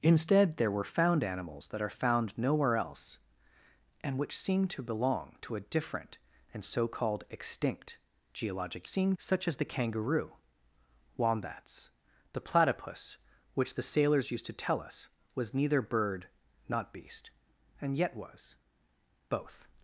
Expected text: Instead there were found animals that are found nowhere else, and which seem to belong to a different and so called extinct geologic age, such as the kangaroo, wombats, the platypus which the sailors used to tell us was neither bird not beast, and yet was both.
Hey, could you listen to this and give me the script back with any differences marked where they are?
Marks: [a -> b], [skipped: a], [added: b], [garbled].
Instead there were found animals that are found nowhere else, and which seem to belong to a different and so called extinct geologic [age, -> seem] such as the kangaroo, wombats, the platypus which the sailors used to tell us was neither bird not beast, and yet was both.